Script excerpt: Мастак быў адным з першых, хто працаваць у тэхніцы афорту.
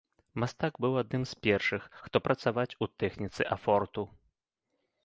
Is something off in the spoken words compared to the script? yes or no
no